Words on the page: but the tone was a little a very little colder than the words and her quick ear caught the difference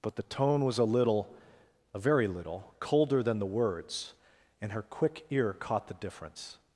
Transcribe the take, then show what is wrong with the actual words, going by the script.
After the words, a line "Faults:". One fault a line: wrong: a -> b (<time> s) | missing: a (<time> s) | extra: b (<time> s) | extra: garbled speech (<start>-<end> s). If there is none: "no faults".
but the tone was a little a very little colder than the words and her quick ear caught the difference
Faults:
no faults